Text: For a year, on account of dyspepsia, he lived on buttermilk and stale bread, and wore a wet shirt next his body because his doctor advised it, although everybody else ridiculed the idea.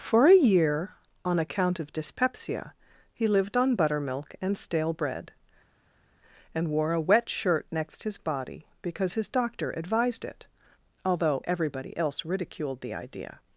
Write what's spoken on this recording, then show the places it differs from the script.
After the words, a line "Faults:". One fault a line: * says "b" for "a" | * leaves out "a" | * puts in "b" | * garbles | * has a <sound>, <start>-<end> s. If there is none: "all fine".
For a year, on account of dyspepsia, he lived on buttermilk and stale bread, and wore a wet shirt next his body because his doctor advised it, although everybody else ridiculed the idea.
Faults:
all fine